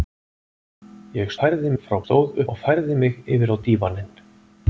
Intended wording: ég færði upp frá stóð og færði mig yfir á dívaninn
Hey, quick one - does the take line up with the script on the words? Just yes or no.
yes